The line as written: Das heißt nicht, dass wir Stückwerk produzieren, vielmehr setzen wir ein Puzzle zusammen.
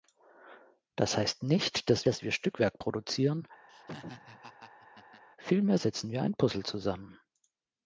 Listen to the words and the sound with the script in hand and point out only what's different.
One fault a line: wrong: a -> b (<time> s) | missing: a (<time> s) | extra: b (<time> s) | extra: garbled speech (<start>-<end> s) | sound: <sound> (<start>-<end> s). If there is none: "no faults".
extra: dass (2.1 s)
sound: laugh (3.7-5.2 s)